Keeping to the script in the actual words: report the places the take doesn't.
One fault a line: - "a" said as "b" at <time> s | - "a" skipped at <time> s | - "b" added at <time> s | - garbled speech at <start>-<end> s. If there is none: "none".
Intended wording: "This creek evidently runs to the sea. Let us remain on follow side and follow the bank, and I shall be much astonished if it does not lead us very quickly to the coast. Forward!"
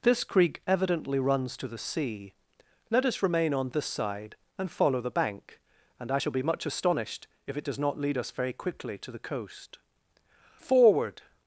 - "follow" said as "this" at 3.7 s